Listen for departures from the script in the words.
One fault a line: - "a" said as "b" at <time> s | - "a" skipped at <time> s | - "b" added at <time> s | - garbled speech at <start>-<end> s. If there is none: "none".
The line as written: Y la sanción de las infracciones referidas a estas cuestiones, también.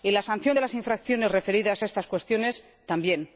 none